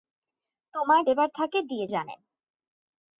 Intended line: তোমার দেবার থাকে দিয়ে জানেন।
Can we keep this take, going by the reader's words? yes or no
yes